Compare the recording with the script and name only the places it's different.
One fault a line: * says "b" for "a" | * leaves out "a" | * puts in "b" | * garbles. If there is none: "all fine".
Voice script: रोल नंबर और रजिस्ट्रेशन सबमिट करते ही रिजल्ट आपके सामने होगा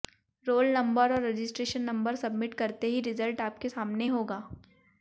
* puts in "नंबर"